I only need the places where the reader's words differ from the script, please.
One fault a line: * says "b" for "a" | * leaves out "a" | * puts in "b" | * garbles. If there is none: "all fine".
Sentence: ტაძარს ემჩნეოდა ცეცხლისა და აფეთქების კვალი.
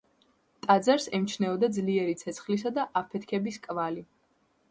* puts in "ძლიერი"